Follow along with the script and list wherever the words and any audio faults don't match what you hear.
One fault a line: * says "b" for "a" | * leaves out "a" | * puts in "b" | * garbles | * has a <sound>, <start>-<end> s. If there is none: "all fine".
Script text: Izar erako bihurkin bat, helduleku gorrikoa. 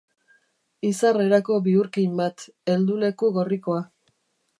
all fine